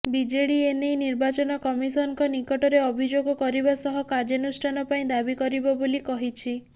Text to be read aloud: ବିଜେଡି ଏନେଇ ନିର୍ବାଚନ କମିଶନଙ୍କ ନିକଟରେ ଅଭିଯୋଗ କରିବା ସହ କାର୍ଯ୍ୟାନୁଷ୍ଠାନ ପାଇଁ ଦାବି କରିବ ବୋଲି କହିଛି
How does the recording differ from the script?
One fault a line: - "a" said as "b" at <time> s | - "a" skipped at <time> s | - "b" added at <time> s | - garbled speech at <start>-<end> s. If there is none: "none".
none